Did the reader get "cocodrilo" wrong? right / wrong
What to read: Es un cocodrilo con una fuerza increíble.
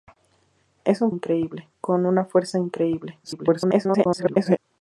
wrong